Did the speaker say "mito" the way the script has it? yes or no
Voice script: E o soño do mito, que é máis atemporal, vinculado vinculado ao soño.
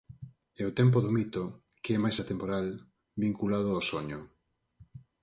yes